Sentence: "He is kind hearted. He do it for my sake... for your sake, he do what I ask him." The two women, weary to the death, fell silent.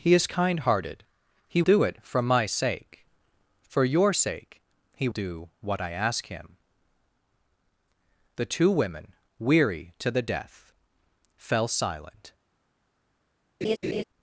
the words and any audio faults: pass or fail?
fail